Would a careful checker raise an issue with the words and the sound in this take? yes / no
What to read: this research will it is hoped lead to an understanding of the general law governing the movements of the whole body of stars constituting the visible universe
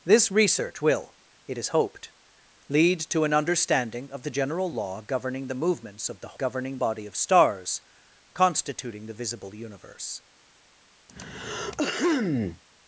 yes